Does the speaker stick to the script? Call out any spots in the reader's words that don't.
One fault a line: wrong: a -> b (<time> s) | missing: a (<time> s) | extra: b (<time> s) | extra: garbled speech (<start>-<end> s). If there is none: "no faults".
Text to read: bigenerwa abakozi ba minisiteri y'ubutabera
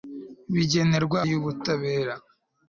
missing: abakozi ba minisiteri (1.2 s)